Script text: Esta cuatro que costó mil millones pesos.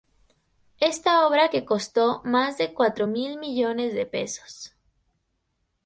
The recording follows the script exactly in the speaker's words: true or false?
false